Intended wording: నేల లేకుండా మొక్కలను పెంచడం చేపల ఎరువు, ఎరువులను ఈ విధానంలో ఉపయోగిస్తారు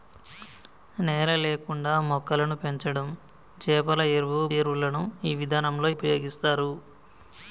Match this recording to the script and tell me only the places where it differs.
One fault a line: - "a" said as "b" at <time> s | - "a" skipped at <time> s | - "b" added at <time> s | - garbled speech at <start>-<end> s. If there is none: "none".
none